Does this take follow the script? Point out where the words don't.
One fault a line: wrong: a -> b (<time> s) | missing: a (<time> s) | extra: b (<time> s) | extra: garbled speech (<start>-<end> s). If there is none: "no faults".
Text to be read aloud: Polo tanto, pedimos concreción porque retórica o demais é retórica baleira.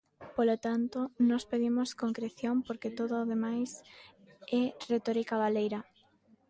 extra: nós (1.3 s)
wrong: retórica -> todo (3.0 s)